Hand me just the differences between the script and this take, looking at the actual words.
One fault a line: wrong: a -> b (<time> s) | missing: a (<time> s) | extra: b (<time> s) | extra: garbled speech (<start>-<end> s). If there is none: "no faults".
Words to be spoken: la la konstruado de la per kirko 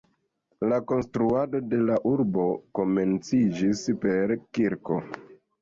missing: la (0.8 s)
extra: urbo komenciĝis (2.1 s)